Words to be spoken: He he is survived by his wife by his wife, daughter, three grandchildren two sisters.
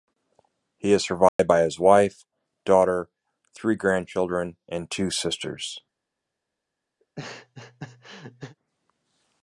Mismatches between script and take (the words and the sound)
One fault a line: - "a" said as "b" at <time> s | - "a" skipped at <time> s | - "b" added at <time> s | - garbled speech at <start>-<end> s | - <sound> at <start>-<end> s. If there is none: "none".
- "he" skipped at 0.9 s
- dropout at 1.3-1.4 s
- "by his wife" skipped at 2.2 s
- "and" added at 4.7 s
- laugh at 7.0-8.6 s